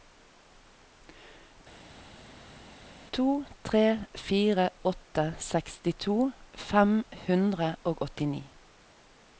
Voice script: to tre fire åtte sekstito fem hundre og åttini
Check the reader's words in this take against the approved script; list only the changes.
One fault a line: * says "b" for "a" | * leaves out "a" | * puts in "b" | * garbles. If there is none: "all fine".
all fine